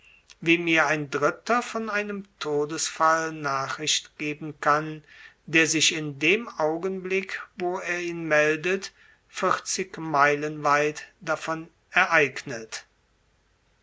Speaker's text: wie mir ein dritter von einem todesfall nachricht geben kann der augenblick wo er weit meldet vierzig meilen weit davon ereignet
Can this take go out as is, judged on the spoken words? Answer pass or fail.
fail